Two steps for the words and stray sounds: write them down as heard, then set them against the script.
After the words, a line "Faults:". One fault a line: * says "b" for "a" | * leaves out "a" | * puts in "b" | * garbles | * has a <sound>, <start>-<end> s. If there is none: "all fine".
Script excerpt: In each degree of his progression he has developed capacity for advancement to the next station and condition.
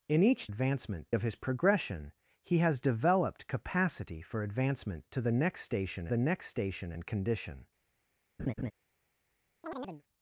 In each advancement of his progression he has developed capacity for advancement to the next station the next station and condition.
Faults:
* says "advancement" for "degree"
* puts in "the next station"
* has a laugh, 8.4-8.7 s
* has a chirp, 9.6-10.0 s